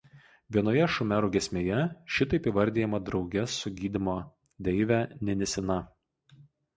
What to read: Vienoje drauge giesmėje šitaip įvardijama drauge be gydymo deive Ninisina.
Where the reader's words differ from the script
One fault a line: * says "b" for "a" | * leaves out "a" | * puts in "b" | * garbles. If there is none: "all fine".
* says "šumerų" for "drauge"
* says "su" for "be"